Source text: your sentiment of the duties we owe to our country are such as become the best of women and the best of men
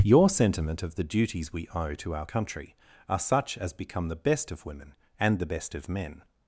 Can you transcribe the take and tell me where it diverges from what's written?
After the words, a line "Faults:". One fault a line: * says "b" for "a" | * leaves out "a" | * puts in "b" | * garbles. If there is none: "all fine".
your sentiment of the duties we owe to our country are such as become the best of women and the best of men
Faults:
all fine